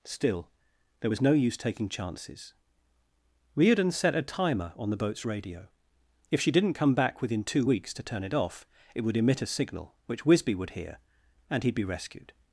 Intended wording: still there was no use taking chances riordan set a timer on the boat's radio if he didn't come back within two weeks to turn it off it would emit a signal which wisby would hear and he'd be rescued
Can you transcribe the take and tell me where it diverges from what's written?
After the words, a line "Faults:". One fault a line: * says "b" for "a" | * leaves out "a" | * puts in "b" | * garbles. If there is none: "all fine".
still there was no use taking chances riordan set a timer on the boat's radio if she didn't come back within two weeks to turn it off it would emit a signal which wisby would hear and he'd be rescued
Faults:
* says "she" for "he"